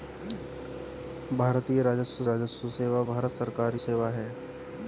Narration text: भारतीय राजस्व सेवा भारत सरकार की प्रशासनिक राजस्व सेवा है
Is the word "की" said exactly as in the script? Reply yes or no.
no